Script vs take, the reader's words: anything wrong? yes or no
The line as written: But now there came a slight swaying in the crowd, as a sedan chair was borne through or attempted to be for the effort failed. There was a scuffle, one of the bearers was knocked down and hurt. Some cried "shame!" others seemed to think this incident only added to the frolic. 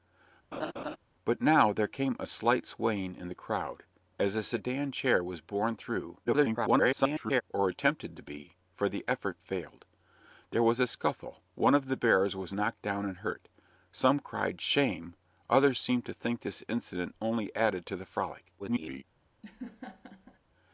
yes